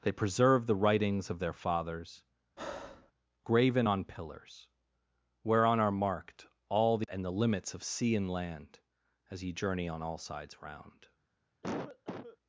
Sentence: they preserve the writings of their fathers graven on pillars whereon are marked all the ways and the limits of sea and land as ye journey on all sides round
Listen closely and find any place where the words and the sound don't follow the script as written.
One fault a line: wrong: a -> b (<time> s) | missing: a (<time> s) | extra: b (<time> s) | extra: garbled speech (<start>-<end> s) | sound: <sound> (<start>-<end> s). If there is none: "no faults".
sound: breath (2.6-3.1 s)
missing: ways (7.1 s)
sound: cough (11.6-12.4 s)